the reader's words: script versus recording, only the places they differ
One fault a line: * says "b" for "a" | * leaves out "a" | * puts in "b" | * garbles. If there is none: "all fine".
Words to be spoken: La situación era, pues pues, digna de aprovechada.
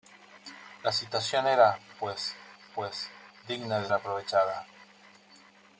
all fine